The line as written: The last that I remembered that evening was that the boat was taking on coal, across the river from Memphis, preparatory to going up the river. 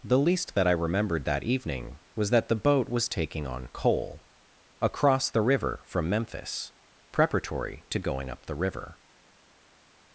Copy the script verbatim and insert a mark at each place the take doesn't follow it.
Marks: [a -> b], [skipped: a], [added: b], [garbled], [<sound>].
The [last -> least] that I remembered that evening was that the boat was taking on coal, across the river from Memphis, preparatory to going up the river.